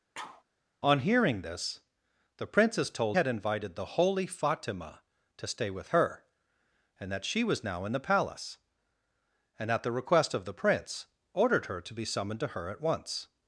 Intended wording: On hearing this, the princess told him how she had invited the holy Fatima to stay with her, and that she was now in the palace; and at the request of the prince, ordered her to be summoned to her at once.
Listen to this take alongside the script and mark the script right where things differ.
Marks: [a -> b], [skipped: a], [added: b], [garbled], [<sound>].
[sneeze] On hearing this, the princess told [skipped: him how she] had invited the holy Fatima to stay with her, and that she was now in the palace; and at the request of the prince, ordered her to be summoned to her at once.